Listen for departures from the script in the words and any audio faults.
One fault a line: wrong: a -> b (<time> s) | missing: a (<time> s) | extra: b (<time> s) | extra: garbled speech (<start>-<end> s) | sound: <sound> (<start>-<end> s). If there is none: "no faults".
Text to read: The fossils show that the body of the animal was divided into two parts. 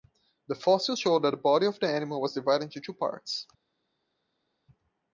no faults